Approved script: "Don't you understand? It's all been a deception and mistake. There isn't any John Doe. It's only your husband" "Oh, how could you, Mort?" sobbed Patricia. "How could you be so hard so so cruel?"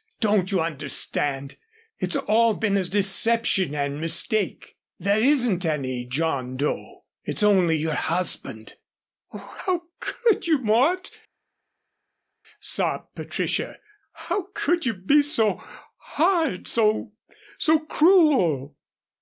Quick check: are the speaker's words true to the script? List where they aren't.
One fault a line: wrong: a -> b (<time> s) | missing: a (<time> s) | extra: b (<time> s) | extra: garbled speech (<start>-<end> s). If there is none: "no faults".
no faults